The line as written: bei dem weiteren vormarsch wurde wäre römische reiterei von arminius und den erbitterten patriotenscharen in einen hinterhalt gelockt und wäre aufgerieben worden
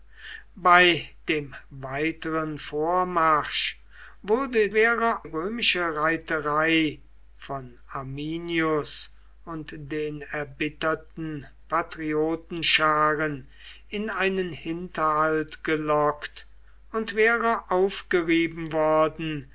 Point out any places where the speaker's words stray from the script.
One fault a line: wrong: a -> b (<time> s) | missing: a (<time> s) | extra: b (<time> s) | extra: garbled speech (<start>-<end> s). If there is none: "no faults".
no faults